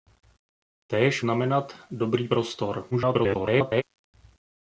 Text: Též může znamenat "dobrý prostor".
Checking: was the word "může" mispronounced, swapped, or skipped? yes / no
yes